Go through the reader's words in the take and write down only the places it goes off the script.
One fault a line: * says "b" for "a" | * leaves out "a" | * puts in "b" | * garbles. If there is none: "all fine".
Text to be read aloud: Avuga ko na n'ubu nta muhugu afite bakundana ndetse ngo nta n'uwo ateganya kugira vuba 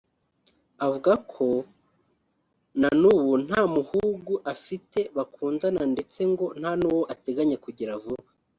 all fine